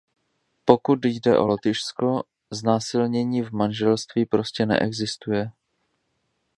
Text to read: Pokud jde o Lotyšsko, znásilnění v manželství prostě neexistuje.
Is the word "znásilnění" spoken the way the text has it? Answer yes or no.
yes